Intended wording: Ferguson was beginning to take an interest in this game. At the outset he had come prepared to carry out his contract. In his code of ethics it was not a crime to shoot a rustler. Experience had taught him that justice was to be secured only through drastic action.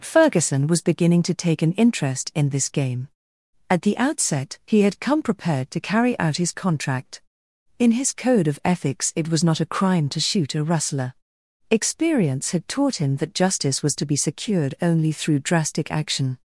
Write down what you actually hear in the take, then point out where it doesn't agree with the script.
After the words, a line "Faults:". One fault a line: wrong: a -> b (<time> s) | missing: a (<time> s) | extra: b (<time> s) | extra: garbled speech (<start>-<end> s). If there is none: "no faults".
Ferguson was beginning to take an interest in this game. At the outset he had come prepared to carry out his contract. In his code of ethics it was not a crime to shoot a rustler. Experience had taught him that justice was to be secured only through drastic action.
Faults:
no faults